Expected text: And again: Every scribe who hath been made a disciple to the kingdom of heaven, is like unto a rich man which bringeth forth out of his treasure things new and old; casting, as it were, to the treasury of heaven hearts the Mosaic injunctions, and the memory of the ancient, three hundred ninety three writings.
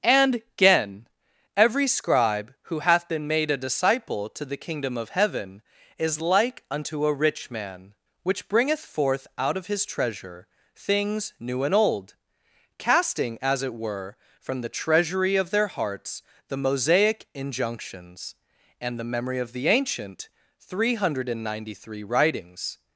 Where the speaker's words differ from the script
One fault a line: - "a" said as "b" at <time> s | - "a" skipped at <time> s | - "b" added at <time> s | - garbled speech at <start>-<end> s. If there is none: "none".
- "to" said as "from" at 14.4 s
- "heaven" said as "their" at 15.5 s